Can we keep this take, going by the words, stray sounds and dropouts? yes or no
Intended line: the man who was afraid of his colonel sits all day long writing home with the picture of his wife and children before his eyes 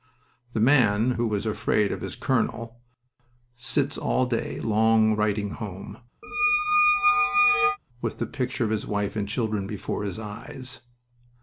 no